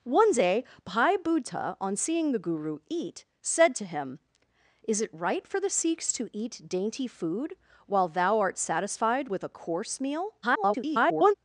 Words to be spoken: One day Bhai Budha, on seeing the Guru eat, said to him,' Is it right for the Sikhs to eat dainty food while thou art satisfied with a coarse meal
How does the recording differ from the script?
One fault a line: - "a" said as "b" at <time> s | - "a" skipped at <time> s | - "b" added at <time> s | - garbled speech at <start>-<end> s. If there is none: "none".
- garbled speech at 10.4-11.3 s